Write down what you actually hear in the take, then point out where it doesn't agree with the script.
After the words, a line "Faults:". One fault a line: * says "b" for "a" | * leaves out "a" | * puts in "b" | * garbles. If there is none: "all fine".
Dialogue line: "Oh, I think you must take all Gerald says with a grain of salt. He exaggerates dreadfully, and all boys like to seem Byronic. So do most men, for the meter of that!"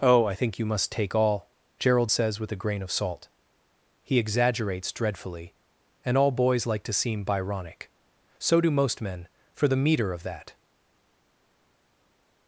"Oh, I think you must take all Gerald says with a grain of salt. He exaggerates dreadfully, and all boys like to seem Byronic. So do most men, for the meter of that!"
Faults:
all fine